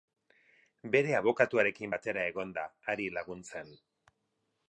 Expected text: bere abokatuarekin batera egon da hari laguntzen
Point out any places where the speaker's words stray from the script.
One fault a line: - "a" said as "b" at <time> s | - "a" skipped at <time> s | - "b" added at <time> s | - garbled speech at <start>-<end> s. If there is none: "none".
none